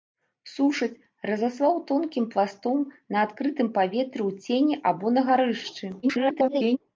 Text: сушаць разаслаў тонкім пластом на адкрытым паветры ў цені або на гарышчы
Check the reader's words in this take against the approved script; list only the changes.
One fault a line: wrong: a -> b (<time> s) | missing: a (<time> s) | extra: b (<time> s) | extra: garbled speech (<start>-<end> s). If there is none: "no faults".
extra: garbled speech (6.0-6.8 s)